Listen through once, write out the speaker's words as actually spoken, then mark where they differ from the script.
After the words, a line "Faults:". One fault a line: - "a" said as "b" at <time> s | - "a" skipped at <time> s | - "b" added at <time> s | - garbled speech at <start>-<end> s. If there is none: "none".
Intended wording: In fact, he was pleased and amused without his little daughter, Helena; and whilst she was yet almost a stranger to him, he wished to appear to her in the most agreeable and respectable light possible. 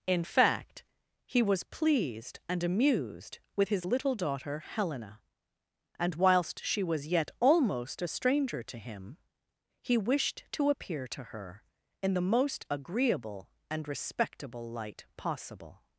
In fact, he was pleased and amused with his little daughter, Helena; and whilst she was yet almost a stranger to him, he wished to appear to her in the most agreeable and respectable light possible.
Faults:
- "without" said as "with" at 3.6 s